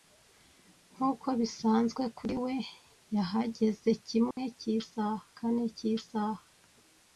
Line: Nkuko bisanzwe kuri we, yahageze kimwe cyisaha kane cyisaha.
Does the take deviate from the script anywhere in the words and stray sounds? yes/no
yes